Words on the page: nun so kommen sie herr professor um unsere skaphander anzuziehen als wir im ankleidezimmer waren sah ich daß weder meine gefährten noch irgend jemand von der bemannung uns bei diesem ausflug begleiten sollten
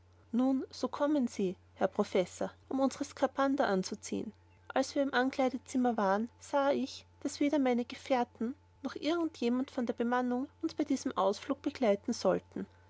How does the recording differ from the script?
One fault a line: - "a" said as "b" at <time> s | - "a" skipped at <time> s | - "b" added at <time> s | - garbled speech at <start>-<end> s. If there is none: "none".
none